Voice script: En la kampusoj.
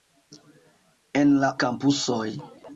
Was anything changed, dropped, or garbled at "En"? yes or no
no